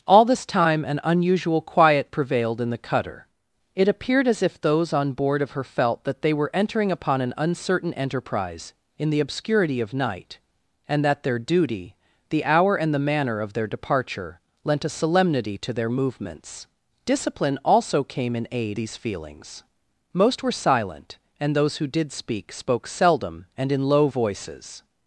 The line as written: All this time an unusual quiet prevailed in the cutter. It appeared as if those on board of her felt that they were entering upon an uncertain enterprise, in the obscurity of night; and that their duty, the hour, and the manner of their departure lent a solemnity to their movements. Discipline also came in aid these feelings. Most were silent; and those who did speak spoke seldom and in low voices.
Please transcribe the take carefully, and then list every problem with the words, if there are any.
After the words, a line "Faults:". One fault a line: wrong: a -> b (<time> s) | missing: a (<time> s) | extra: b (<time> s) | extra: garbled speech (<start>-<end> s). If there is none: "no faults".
All this time an unusual quiet prevailed in the cutter. It appeared as if those on board of her felt that they were entering upon an uncertain enterprise, in the obscurity of night; and that their duty, the hour, and the manner of their departure lent a solemnity to their movements. Discipline also came in aid these feelings. Most were silent; and those who did speak spoke seldom and in low voices.
Faults:
no faults